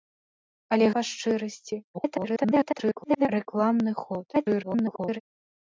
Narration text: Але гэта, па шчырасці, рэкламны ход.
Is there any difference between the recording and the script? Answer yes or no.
yes